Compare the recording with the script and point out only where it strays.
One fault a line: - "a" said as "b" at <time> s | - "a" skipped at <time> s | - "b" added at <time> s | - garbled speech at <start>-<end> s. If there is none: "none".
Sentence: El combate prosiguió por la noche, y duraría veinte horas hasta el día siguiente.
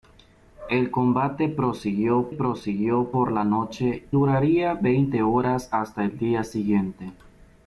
- "prosiguió" added at 2.3 s
- "y" skipped at 4.1 s